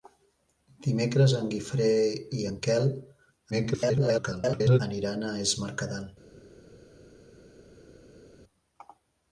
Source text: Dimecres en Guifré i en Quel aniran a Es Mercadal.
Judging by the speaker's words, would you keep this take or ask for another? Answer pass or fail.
fail